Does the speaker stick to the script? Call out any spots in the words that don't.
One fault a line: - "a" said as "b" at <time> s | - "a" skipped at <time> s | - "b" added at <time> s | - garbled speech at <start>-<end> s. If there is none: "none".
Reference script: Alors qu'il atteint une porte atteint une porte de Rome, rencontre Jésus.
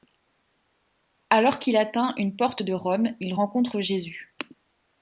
- "atteint une porte" skipped at 2.6 s
- "il" added at 3.2 s